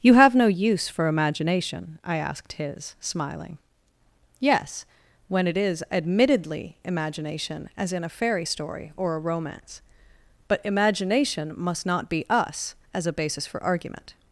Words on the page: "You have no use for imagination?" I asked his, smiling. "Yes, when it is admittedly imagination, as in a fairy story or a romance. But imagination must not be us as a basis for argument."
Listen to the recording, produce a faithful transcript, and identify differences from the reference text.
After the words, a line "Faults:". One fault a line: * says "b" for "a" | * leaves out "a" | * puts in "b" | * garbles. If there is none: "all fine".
"You have no use for imagination?" I asked his, smiling. "Yes, when it is admittedly imagination, as in a fairy story or a romance. But imagination must not be us as a basis for argument."
Faults:
all fine